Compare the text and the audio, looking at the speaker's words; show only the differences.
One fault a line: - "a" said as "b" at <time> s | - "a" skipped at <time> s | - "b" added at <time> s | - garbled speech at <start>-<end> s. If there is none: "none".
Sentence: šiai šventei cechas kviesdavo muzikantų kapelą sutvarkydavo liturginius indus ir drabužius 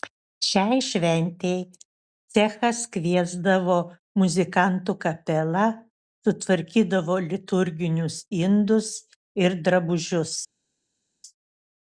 none